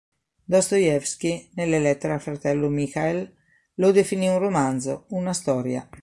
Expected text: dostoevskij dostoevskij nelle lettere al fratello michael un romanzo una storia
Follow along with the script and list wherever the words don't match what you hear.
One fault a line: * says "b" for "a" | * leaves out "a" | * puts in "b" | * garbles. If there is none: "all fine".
* leaves out "dostoevskij"
* puts in "lo definì"